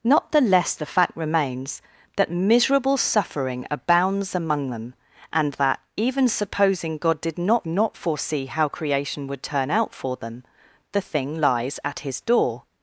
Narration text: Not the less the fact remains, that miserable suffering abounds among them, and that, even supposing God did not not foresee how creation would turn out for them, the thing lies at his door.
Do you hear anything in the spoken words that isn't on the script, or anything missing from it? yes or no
no